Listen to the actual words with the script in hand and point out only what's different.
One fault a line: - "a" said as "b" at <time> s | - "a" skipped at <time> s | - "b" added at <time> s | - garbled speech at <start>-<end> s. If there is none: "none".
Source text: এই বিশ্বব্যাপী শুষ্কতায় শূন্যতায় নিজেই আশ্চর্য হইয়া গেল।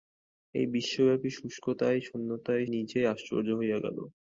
none